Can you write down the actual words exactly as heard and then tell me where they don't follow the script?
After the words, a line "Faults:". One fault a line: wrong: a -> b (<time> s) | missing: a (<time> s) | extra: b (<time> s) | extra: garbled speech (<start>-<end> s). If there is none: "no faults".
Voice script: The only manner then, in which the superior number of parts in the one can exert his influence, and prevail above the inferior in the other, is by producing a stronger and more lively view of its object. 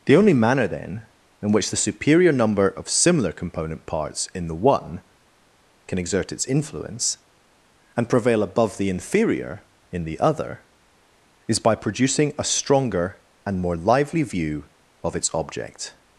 The only manner then, in which the superior number of similar component parts in the one can exert its influence, and prevail above the inferior in the other, is by producing a stronger and more lively view of its object.
Faults:
extra: similar component (2.9 s)
wrong: his -> its (6.3 s)